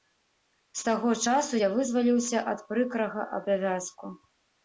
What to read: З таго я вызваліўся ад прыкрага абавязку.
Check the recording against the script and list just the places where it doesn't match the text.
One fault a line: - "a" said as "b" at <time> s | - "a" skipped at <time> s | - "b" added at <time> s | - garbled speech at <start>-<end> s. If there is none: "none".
- "часу" added at 1.3 s